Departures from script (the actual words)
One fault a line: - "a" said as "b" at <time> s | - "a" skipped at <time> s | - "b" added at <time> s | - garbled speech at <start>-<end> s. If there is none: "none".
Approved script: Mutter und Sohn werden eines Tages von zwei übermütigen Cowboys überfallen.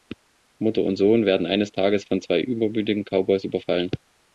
none